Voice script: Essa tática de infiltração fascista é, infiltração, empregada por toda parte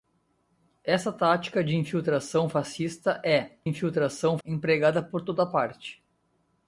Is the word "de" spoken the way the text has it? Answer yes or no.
yes